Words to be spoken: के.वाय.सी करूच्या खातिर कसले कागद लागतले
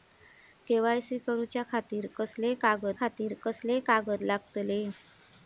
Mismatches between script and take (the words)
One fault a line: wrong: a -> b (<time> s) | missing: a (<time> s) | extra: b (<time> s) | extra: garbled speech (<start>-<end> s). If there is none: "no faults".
extra: खातिर कसले कागद (3.0 s)